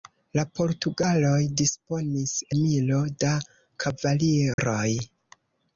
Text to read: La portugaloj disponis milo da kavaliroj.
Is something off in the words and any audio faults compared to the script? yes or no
yes